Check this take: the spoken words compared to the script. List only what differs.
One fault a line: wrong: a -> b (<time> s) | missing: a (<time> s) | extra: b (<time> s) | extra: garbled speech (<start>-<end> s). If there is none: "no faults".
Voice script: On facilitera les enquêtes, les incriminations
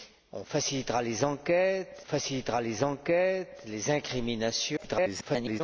extra: facilitera les enquêtes (2.0 s)
extra: garbled speech (4.8-5.6 s)